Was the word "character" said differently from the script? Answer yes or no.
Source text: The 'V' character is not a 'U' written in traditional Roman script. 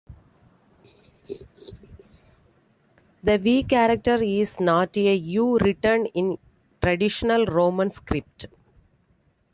no